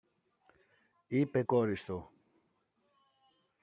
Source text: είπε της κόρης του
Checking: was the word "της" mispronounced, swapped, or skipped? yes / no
yes